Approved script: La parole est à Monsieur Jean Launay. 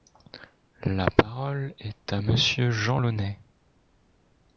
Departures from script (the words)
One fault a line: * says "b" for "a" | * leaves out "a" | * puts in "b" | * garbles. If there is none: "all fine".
all fine